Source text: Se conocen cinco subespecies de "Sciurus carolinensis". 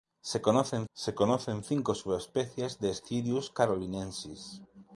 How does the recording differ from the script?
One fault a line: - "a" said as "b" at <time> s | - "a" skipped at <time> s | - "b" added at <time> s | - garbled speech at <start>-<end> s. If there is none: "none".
- "se conocen" added at 1.0 s